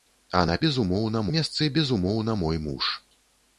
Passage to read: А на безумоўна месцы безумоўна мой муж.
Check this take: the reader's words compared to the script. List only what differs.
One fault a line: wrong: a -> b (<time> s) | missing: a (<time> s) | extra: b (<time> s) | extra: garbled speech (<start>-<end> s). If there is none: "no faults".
no faults